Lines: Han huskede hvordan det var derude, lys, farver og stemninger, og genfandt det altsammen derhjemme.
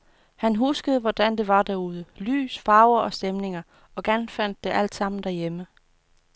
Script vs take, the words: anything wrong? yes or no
no